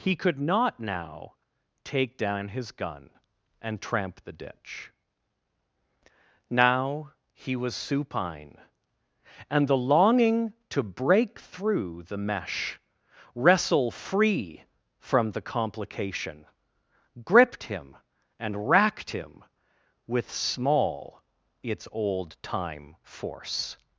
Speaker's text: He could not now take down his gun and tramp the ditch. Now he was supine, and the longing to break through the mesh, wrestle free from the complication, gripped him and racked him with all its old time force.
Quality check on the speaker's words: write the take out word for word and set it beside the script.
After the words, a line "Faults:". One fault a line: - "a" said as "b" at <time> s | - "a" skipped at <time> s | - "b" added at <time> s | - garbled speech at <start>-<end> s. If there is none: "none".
He could not now take down his gun and tramp the ditch. Now he was supine, and the longing to break through the mesh, wrestle free from the complication, gripped him and racked him with small its old time force.
Faults:
- "all" said as "small" at 20.3 s